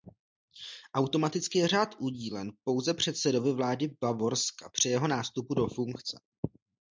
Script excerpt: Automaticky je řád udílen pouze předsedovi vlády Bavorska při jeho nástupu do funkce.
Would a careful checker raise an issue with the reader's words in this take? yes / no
no